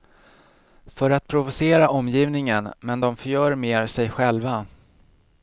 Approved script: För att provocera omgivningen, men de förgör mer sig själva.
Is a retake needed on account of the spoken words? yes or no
no